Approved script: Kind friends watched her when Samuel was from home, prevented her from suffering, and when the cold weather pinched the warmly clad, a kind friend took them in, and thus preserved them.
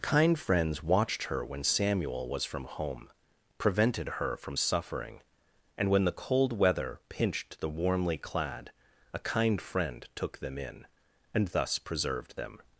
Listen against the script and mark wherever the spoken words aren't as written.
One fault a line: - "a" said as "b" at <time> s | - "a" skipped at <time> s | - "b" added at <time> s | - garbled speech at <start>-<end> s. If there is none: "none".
none